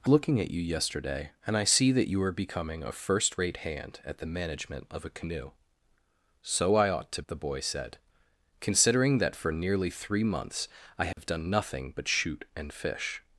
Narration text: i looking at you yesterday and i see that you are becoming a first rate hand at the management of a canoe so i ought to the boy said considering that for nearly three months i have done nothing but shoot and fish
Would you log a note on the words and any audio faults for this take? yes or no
yes